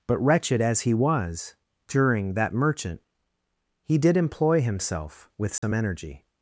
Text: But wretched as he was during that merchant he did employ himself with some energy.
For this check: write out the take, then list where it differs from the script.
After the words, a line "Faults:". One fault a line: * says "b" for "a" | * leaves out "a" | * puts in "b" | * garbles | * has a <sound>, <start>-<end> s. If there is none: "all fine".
But wretched as he was during that merchant he did employ himself with some energy.
Faults:
* has a dropout, 5.6-5.6 s